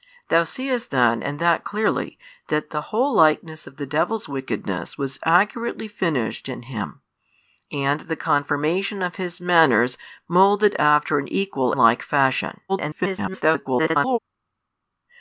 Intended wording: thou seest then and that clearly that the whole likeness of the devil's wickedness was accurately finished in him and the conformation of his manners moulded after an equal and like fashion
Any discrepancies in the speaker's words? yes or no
yes